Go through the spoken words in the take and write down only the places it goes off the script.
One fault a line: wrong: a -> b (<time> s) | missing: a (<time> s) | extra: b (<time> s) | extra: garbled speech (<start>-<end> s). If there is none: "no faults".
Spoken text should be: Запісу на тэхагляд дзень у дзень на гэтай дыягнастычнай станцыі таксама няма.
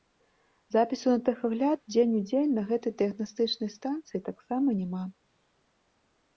no faults